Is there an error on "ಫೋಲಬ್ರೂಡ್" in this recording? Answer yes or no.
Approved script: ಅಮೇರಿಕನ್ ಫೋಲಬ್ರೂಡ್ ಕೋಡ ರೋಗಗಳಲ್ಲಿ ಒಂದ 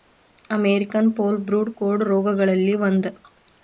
no